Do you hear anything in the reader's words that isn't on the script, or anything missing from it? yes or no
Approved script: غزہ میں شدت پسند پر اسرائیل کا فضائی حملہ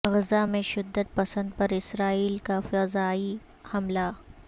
no